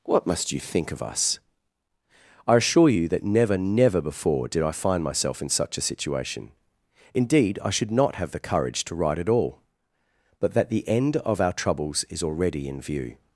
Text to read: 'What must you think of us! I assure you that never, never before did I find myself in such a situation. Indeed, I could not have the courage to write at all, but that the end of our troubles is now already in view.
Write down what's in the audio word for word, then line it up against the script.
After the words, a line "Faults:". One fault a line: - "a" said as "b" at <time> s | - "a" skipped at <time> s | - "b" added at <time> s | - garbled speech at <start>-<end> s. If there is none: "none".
'What must you think of us! I assure you that never, never before did I find myself in such a situation. Indeed, I should not have the courage to write at all, but that the end of our troubles is already in view.
Faults:
- "could" said as "should" at 7.7 s
- "now" skipped at 12.2 s